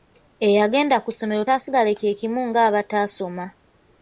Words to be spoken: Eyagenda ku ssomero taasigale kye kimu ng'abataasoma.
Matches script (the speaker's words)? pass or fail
pass